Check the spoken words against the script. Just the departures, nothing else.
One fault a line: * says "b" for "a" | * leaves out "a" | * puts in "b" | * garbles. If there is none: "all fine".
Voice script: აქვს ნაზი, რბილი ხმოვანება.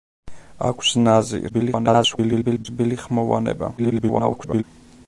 * garbles
* garbles